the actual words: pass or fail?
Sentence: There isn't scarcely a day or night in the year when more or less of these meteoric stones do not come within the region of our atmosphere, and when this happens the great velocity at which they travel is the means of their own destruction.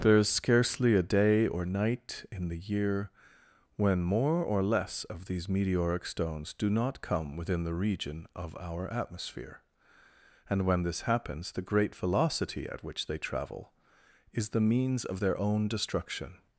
fail